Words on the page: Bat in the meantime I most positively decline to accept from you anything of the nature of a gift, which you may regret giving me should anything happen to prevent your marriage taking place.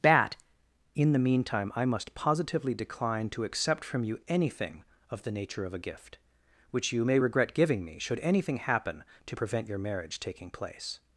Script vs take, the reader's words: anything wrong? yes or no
yes